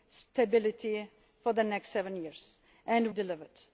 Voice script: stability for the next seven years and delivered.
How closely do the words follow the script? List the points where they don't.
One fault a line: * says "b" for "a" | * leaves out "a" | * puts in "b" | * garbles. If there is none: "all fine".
all fine